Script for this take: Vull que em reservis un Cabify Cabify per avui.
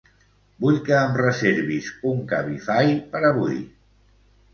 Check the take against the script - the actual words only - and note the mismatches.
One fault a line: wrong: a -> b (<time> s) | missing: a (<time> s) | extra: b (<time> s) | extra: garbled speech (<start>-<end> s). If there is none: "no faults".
missing: Cabify (2.9 s)